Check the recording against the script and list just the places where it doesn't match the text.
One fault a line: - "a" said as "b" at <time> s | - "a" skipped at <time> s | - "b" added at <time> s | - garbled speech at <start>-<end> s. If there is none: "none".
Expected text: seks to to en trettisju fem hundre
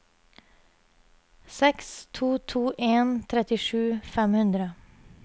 none